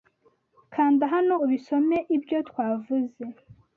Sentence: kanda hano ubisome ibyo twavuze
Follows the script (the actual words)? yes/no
yes